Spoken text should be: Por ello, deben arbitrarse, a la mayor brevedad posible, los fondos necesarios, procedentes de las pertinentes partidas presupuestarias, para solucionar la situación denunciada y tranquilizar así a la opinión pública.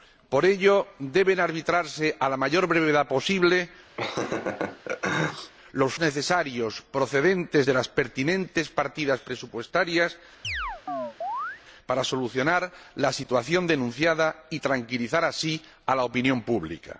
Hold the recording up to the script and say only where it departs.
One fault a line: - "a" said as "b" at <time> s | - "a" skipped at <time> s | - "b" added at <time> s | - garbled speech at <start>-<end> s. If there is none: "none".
- "fondos" skipped at 5.9 s